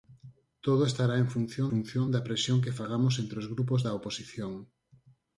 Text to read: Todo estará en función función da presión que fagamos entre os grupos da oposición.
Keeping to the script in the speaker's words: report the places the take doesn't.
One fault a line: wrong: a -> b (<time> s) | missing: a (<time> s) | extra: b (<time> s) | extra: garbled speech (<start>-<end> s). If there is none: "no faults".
no faults